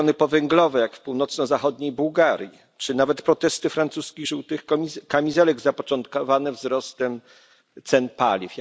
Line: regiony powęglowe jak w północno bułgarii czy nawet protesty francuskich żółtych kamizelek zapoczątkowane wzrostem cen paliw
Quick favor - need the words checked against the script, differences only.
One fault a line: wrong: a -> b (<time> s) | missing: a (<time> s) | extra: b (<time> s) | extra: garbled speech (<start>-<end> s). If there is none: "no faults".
extra: zachodniej (1.5 s)